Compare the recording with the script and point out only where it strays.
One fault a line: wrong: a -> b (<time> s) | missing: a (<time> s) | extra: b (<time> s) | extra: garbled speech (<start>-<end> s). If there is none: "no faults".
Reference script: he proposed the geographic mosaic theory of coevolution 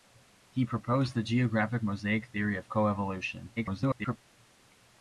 extra: garbled speech (3.6-4.2 s)